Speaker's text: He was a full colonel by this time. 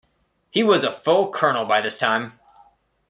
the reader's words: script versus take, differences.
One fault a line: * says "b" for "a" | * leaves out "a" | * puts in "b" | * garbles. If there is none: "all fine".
all fine